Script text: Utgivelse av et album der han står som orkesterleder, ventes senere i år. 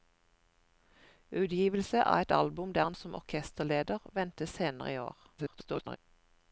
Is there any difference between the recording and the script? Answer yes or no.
yes